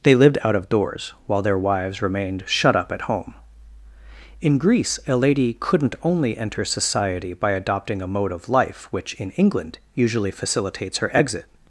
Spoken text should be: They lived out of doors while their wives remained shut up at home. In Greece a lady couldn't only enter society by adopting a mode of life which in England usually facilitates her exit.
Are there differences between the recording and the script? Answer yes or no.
no